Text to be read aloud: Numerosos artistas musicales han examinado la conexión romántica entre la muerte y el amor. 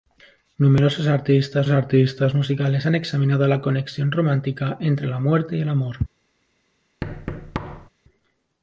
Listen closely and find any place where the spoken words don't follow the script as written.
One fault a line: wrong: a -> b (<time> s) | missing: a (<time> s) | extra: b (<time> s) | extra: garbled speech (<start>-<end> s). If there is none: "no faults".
extra: artistas (1.7 s)